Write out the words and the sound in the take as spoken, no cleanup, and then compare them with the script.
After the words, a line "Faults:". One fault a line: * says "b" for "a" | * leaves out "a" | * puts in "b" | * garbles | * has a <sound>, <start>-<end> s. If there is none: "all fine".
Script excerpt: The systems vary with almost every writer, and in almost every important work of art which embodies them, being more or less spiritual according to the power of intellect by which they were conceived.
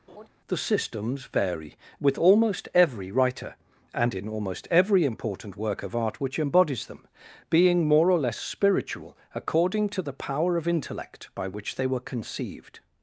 The systems vary with almost every writer, and in almost every important work of art which embodies them, being more or less spiritual according to the power of intellect by which they were conceived.
Faults:
* has a laugh, 0.1-0.3 s